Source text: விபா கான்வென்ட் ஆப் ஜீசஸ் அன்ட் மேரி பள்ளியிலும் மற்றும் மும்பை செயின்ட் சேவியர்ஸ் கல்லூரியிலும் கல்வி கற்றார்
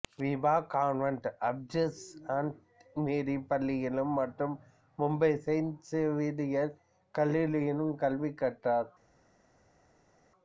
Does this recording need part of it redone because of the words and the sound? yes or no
no